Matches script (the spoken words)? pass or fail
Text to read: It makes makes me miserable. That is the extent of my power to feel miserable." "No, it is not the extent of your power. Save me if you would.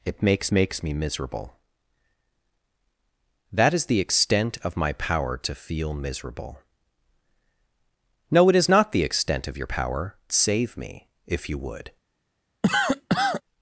pass